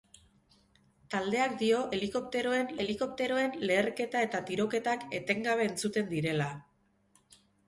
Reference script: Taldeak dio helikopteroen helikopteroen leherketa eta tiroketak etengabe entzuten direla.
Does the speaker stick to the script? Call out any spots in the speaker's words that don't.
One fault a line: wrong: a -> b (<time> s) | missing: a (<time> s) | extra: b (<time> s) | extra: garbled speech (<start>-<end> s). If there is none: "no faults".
no faults